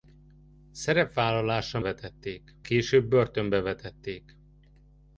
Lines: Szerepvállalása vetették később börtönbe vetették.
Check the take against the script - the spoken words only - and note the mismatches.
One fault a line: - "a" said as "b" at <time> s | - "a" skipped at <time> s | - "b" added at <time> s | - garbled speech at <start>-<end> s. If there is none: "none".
none